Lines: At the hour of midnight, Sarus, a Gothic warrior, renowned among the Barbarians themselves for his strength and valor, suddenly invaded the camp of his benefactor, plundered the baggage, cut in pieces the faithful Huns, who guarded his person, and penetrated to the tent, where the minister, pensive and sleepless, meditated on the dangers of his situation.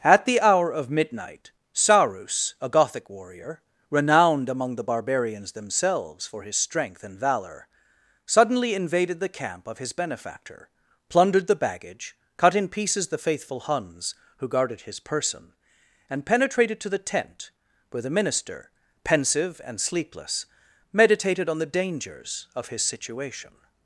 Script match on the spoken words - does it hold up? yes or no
yes